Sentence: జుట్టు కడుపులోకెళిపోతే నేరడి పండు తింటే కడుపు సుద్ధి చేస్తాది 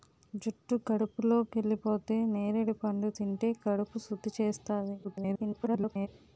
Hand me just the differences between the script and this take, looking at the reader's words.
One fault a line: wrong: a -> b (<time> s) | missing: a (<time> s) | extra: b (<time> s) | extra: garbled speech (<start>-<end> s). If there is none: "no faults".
extra: garbled speech (5.0-6.1 s)